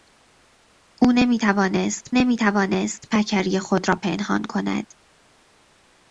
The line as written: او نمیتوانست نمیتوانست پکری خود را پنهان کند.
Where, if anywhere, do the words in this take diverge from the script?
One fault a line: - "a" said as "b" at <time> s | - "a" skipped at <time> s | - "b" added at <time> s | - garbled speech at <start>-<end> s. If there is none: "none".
none